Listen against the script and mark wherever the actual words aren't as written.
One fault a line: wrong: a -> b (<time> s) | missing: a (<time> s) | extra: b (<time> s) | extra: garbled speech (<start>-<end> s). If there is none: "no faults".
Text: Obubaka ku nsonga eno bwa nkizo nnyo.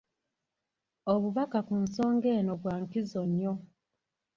no faults